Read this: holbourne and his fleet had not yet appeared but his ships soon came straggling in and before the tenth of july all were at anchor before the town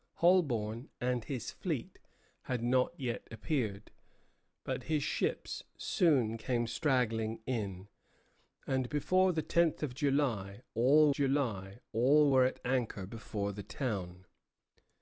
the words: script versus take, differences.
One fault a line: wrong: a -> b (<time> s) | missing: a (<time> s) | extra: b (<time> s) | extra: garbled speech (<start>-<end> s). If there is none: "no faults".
extra: july all (11.1 s)